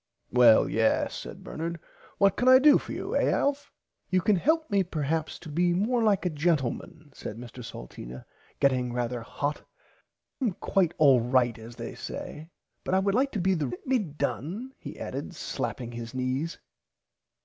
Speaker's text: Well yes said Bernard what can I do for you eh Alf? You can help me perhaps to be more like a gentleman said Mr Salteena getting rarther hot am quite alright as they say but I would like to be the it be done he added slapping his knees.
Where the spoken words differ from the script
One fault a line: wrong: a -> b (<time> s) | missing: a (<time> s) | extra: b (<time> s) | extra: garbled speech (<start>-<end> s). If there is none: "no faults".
no faults